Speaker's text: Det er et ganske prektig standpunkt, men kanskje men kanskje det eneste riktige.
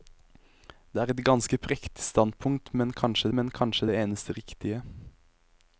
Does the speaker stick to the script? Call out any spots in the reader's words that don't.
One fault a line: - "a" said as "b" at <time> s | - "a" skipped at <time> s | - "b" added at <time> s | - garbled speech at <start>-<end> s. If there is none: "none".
none